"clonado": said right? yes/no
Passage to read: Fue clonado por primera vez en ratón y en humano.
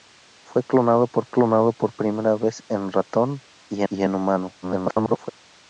yes